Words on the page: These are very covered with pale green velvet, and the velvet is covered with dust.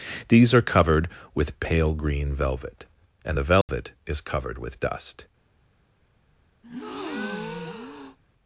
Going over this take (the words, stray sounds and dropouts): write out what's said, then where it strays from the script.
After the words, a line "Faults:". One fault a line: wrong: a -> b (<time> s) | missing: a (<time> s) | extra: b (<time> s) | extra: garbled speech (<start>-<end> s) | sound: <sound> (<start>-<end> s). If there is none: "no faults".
These are covered with pale green velvet, and the velvet is covered with dust.
Faults:
missing: very (0.6 s)
sound: dropout (3.6-3.7 s)
sound: breath (6.6-8.2 s)